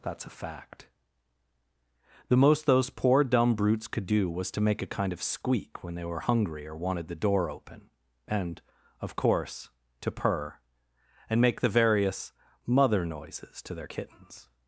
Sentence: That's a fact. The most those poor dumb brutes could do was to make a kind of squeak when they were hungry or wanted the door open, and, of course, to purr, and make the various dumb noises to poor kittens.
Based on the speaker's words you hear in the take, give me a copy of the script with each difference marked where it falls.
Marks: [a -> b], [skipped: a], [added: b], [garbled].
That's a fact. The most those poor dumb brutes could do was to make a kind of squeak when they were hungry or wanted the door open, and, of course, to purr, and make the various [dumb -> mother] noises to [poor -> their] kittens.